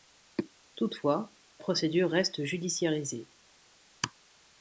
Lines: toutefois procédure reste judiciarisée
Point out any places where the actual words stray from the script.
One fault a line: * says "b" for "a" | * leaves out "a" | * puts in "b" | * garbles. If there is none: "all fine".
all fine